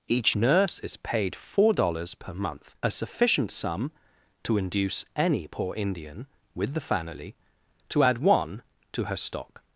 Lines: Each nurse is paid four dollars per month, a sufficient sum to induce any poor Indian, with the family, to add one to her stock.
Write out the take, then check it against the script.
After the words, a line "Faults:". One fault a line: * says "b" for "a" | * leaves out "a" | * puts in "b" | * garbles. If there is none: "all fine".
Each nurse is paid four dollars per month, a sufficient sum to induce any poor Indian, with the family, to add one to her stock.
Faults:
all fine